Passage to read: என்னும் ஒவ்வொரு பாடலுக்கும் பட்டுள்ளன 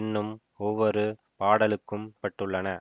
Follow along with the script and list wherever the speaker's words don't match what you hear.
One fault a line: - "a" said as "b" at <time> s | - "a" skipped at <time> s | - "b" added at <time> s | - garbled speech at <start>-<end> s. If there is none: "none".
none